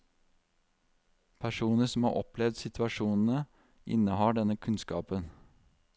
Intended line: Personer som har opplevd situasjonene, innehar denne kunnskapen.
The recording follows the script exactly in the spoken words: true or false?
true